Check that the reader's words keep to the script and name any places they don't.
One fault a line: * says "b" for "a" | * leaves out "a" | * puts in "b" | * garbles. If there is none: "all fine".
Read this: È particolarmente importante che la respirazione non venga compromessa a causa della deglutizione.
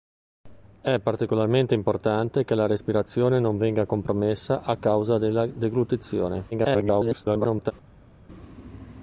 * garbles